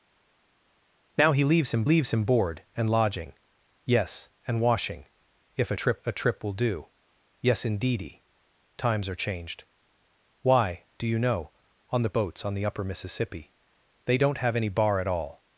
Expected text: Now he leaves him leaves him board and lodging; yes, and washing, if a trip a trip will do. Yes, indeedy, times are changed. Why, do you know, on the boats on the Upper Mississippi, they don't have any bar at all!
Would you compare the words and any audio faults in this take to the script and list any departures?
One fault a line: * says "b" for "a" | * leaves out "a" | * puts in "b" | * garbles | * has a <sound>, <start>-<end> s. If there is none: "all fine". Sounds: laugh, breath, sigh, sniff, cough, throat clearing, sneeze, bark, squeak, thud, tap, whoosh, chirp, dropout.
all fine